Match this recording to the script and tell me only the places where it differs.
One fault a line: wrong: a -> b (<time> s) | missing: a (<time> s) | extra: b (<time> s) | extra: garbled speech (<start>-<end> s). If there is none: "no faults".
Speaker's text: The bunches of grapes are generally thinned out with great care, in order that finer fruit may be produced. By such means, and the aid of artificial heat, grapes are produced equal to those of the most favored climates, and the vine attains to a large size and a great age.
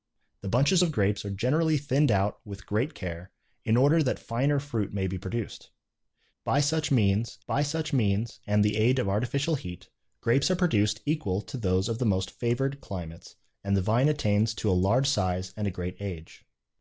extra: by such means (7.5 s)